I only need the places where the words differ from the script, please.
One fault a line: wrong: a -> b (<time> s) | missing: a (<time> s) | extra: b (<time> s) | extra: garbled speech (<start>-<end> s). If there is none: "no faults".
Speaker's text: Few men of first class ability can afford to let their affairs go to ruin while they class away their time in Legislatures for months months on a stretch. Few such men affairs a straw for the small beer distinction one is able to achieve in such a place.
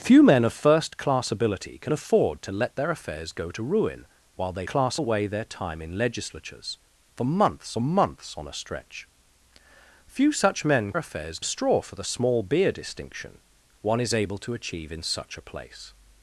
no faults